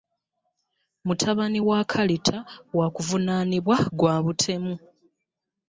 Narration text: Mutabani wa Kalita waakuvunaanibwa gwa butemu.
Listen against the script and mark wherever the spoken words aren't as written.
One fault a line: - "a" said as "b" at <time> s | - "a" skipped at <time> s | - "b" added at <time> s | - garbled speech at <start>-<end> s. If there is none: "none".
none